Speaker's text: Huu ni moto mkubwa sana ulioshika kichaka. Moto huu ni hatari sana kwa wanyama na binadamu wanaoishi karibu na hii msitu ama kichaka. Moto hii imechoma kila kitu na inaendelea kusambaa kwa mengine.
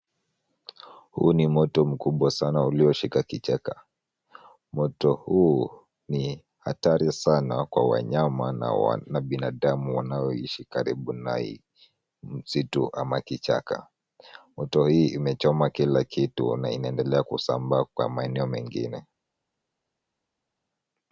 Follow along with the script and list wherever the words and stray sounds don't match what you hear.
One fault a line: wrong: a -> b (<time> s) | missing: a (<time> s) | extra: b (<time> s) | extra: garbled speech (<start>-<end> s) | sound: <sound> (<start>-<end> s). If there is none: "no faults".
extra: maeneo (18.1 s)